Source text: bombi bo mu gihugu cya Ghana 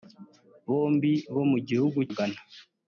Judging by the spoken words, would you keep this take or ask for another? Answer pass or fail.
fail